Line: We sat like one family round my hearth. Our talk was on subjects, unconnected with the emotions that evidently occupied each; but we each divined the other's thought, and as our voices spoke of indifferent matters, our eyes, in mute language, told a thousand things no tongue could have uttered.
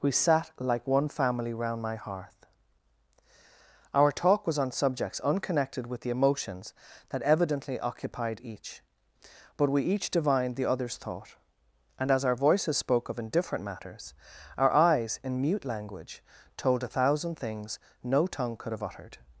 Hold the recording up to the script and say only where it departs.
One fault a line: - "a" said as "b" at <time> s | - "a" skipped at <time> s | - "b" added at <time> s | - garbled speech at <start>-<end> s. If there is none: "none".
none